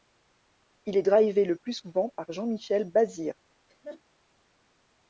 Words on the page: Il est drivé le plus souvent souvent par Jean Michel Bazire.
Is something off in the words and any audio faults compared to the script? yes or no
yes